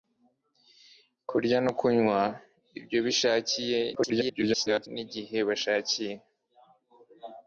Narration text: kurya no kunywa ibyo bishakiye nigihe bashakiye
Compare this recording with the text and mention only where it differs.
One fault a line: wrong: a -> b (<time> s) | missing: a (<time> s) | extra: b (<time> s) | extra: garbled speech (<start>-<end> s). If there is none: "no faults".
extra: garbled speech (4.0-4.9 s)